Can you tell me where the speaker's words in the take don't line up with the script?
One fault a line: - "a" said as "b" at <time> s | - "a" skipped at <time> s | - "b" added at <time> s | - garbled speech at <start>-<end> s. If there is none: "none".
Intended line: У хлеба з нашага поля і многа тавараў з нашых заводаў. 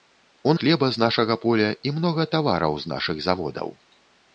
none